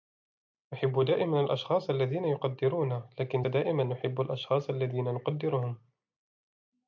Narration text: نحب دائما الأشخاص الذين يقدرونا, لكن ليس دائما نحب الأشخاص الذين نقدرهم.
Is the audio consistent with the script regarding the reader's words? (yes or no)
no